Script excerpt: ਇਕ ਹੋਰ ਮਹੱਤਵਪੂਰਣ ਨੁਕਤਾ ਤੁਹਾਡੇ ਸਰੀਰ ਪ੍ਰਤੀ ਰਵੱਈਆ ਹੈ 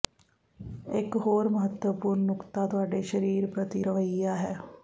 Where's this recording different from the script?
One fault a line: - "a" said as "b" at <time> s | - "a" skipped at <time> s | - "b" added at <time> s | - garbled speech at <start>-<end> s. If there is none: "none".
none